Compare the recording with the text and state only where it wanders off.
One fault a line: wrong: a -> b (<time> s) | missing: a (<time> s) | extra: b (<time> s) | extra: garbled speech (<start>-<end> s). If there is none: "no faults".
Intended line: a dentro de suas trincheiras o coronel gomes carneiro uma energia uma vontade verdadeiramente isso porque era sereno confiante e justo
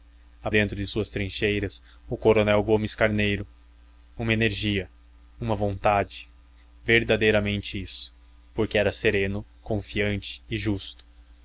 no faults